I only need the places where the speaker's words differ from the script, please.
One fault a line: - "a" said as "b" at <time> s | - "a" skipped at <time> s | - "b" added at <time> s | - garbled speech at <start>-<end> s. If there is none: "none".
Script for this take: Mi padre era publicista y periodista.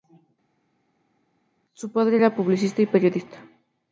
- "Mi" said as "Su" at 1.7 s